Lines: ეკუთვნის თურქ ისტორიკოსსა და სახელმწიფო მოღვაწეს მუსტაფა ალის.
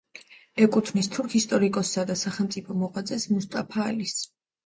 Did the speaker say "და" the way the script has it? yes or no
yes